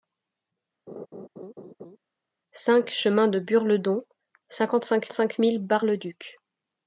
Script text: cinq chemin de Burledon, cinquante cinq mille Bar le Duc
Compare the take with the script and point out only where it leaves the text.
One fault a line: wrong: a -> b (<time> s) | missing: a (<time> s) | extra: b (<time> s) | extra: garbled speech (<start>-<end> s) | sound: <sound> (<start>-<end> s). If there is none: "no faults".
sound: laugh (0.9-2.0 s)
extra: cinq (5.1 s)